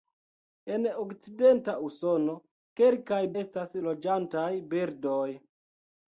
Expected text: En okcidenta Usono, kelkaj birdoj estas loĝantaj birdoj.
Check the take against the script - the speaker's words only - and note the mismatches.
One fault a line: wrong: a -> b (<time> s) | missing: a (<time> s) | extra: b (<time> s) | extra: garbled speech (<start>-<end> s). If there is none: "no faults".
missing: birdoj (3.2 s)